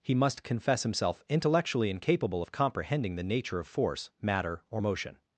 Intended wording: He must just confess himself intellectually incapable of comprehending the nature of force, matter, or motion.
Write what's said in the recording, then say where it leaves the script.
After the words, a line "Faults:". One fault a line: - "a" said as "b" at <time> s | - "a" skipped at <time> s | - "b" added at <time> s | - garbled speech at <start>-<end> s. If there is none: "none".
He must confess himself intellectually incapable of comprehending the nature of force, matter, or motion.
Faults:
- "just" skipped at 0.4 s